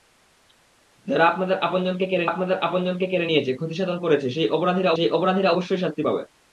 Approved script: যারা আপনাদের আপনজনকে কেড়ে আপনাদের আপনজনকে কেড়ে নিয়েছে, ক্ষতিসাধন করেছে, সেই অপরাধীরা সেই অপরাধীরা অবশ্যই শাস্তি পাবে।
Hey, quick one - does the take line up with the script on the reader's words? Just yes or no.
yes